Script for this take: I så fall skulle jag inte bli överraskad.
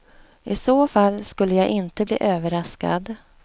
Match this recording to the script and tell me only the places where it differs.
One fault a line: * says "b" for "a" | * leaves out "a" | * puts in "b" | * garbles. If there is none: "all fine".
all fine